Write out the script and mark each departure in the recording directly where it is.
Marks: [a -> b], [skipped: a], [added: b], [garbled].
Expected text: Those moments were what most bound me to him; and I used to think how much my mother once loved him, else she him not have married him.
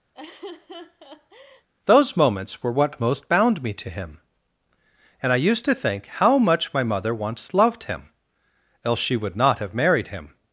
Those moments were what most bound me to him; and I used to think how much my mother once loved him, else she [him -> would] not have married him.